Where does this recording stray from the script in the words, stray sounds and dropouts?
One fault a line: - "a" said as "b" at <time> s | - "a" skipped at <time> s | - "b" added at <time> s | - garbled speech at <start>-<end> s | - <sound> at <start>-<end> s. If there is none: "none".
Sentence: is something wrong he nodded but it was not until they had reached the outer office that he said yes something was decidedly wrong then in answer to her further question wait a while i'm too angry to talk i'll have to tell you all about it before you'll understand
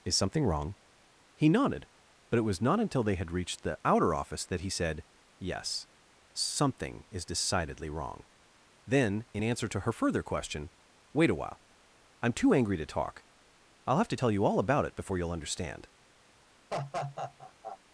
- "was" said as "is" at 7.1 s
- laugh at 16.7-17.8 s